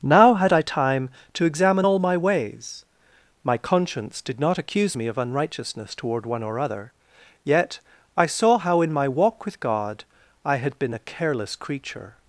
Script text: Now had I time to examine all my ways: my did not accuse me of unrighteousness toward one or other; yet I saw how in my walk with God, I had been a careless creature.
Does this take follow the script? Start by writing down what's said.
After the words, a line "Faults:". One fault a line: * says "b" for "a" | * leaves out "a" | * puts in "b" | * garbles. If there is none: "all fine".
Now had I time to examine all my ways: my conscience did not accuse me of unrighteousness toward one or other; yet I saw how in my walk with God, I had been a careless creature.
Faults:
* puts in "conscience"